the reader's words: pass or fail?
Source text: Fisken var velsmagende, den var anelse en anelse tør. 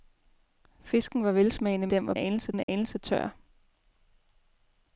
pass